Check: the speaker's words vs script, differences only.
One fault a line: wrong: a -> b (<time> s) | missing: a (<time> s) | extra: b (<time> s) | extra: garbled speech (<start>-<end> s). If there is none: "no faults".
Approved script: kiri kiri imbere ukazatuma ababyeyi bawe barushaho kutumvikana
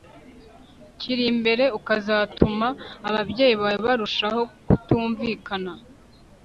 missing: kiri (1.2 s)